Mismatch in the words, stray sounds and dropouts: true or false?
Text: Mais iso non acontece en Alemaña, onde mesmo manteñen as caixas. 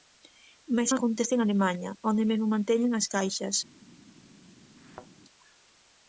true